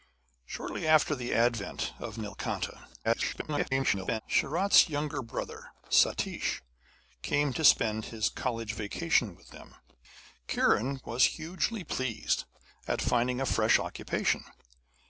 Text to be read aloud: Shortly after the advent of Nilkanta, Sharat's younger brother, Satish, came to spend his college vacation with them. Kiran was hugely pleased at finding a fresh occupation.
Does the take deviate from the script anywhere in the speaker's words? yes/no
yes